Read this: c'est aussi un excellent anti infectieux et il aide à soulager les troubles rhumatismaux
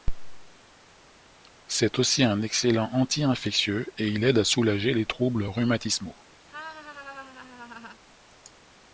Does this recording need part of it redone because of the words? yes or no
no